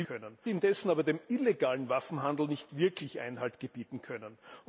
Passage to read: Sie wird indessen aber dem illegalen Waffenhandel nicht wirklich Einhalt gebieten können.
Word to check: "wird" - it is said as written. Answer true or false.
false